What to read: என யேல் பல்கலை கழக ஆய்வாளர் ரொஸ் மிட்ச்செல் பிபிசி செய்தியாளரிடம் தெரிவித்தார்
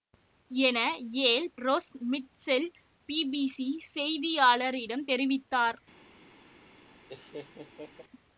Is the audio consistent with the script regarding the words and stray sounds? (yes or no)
no